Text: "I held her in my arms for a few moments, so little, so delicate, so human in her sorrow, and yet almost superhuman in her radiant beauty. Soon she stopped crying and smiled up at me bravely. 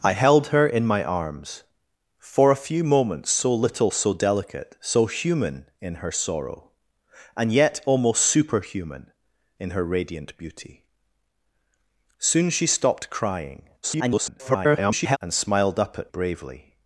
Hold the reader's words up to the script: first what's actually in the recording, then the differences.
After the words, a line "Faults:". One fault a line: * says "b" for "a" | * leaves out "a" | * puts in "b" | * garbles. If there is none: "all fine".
"I held her in my arms for a few moments, so little, so delicate, so human in her sorrow, and yet almost superhuman in her radiant beauty. Soon she stopped crying [garbled] and smiled up at bravely.
Faults:
* garbles
* leaves out "me"